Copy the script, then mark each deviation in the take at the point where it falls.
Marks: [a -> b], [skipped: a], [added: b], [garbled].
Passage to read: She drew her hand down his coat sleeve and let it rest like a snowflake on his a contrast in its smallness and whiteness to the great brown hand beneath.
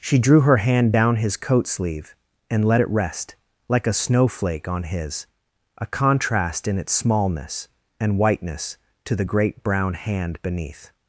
She drew her hand down his coat sleeve and let it rest like a snowflake on his a contrast in its smallness and whiteness to the great brown hand beneath.